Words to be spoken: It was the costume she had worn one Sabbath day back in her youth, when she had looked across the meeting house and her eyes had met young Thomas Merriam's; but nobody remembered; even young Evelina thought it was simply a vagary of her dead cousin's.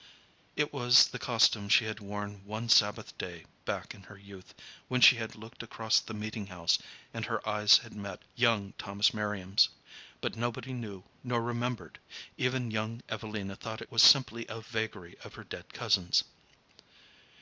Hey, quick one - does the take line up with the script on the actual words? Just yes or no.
no